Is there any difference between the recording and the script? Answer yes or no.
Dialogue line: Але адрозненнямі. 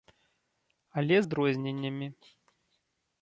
no